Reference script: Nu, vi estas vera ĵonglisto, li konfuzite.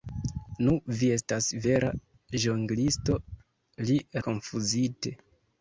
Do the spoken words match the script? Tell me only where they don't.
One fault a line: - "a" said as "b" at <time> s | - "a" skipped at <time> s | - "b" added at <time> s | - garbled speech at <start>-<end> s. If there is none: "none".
none